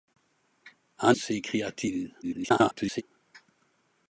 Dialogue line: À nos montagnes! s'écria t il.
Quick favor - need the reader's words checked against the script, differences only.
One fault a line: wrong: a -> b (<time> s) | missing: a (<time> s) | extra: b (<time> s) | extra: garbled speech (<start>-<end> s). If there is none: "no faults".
missing: nos montagnes (1.1 s)
extra: garbled speech (2.2-3.0 s)